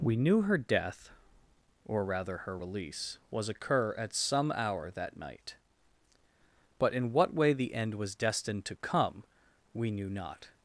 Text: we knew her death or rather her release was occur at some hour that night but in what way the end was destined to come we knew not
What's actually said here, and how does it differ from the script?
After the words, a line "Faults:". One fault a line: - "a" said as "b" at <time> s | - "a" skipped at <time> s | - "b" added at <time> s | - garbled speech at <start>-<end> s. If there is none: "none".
we knew her death or rather her release was occur at some hour that night but in what way the end was destined to come we knew not
Faults:
none